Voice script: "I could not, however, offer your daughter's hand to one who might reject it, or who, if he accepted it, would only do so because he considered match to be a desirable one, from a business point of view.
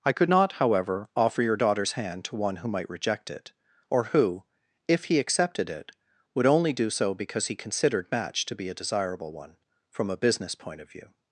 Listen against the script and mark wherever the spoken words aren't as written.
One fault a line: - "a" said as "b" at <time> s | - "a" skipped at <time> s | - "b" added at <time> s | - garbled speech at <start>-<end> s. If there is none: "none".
none